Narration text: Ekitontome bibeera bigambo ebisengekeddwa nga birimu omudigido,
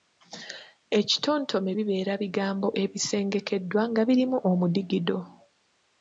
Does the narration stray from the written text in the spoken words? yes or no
no